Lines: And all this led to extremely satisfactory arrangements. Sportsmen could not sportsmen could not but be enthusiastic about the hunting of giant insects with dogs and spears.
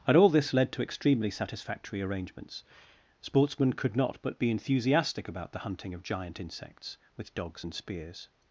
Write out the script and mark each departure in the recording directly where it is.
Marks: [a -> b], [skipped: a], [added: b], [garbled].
And all this led to extremely satisfactory arrangements. Sportsmen could not [skipped: sportsmen could not] but be enthusiastic about the hunting of giant insects with dogs and spears.